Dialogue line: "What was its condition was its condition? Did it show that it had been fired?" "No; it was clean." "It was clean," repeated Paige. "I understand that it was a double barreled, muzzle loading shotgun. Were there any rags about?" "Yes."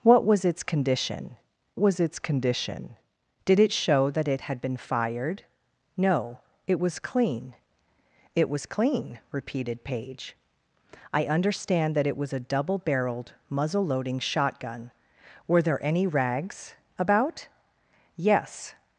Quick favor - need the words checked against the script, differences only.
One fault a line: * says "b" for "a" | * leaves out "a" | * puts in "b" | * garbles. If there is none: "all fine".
all fine